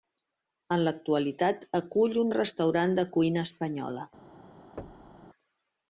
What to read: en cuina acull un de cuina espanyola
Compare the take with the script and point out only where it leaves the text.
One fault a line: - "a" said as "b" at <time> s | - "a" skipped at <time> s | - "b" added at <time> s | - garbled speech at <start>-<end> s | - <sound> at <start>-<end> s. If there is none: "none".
- "cuina" said as "l'actualitat" at 0.9 s
- "restaurant" added at 2.3 s
- thud at 4.8-5.3 s